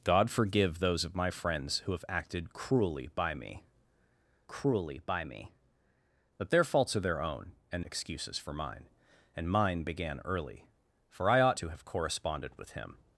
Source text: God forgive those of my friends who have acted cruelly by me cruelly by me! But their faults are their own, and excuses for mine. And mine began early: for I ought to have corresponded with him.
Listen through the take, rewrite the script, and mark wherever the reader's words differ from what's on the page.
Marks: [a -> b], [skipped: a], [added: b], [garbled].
God forgive those of my friends who have acted cruelly by me cruelly by me! But their faults are their own, and excuses for mine. And mine began early: for I ought to have corresponded with him.